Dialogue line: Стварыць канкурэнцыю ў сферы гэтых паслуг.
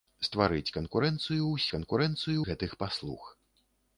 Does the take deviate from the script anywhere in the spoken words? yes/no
yes